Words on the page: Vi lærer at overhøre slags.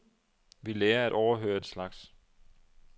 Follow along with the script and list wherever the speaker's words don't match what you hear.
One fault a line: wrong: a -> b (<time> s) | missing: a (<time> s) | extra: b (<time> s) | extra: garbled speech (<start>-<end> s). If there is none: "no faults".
no faults